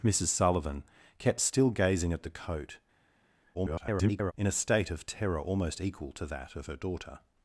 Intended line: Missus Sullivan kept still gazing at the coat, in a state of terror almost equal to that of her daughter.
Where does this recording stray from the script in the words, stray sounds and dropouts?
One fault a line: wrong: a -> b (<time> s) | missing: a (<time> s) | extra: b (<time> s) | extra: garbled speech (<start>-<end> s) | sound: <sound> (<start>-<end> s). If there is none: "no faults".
extra: garbled speech (3.5-4.3 s)